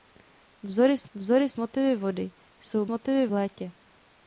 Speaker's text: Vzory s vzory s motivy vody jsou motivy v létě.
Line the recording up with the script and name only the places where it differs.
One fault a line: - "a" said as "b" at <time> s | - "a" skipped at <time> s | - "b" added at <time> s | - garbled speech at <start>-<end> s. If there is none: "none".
none